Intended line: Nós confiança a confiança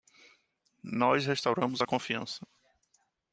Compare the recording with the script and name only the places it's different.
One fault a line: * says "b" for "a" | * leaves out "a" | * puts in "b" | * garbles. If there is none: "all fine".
* says "restauramos" for "confiança"